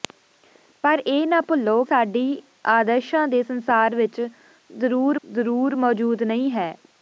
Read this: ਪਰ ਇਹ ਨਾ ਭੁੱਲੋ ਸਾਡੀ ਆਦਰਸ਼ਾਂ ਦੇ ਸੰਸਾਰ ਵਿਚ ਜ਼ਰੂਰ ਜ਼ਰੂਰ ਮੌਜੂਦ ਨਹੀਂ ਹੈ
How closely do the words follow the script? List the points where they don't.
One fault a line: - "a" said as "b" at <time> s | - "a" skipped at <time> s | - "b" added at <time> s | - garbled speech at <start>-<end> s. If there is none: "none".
none